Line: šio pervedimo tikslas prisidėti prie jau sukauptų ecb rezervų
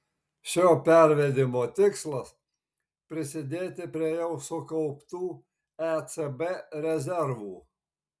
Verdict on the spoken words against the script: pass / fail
pass